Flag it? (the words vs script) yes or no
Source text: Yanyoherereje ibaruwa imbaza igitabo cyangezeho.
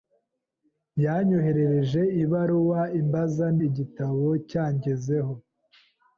no